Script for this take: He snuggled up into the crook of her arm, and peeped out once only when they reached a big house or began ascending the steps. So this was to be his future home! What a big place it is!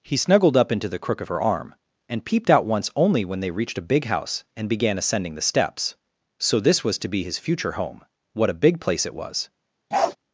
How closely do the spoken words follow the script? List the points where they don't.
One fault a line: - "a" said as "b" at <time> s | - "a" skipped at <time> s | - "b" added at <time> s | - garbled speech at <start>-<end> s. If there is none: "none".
- "or" said as "and" at 4.5 s
- "is" said as "was" at 9.2 s